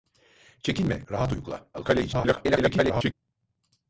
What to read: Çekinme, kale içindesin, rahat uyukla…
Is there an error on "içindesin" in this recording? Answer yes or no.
yes